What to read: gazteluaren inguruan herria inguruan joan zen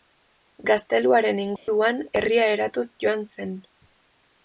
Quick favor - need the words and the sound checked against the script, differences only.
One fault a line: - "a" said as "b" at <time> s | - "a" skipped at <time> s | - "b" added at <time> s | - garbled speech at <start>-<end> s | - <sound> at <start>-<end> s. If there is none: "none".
- dropout at 1.6-1.7 s
- "inguruan" said as "eratuz" at 2.6 s